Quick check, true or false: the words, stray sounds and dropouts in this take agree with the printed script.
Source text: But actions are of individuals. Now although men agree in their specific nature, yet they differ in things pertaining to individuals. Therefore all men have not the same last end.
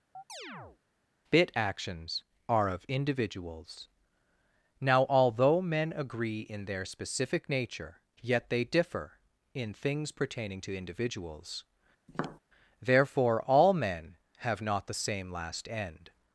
false